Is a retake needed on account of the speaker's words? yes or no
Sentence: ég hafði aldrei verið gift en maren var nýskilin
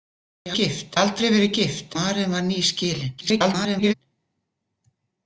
yes